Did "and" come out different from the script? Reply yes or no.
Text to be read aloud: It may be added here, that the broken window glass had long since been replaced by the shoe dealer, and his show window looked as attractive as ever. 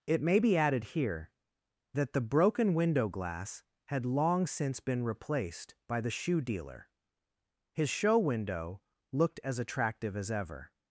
yes